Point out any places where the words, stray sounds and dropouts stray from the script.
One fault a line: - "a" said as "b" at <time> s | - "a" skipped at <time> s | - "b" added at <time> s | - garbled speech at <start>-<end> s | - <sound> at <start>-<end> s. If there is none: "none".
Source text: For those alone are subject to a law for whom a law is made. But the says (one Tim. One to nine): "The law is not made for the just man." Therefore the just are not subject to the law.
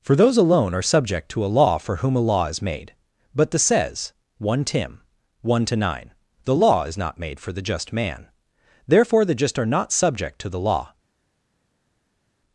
none